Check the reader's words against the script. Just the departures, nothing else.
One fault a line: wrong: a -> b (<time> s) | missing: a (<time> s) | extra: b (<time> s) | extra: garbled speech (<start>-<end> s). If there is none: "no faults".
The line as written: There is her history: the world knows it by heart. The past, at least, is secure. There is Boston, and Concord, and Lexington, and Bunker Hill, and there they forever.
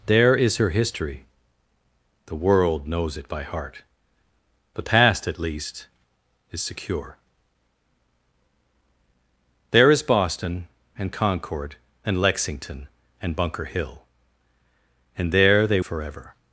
no faults